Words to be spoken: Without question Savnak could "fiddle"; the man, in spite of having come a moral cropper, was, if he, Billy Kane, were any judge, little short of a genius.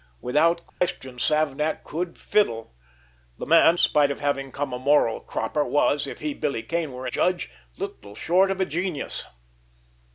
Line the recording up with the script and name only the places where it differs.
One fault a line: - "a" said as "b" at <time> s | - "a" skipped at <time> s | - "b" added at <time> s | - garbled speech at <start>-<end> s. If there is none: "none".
- "in" skipped at 3.8 s
- "any" skipped at 7.1 s